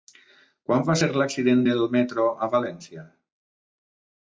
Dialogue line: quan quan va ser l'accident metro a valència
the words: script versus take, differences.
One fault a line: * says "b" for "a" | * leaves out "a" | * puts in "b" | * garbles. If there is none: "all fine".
* leaves out "quan"
* puts in "del"